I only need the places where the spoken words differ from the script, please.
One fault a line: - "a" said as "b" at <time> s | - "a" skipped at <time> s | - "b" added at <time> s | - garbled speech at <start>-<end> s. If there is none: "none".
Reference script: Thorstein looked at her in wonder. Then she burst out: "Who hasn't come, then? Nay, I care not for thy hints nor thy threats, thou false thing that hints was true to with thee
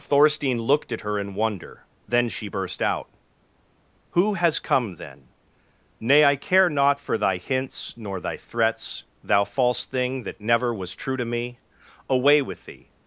- "hasn't" said as "has" at 4.3 s
- "hints" said as "never" at 10.4 s
- "me Away" added at 11.3 s